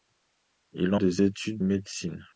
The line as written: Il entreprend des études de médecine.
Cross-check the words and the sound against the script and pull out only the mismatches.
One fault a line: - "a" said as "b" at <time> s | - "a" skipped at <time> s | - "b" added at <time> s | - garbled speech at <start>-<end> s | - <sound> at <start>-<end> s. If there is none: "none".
- "entreprend" skipped at 0.9 s
- "de" skipped at 1.6 s